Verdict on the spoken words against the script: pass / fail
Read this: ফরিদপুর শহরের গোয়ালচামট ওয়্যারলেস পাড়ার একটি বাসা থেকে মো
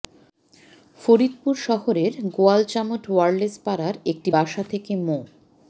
pass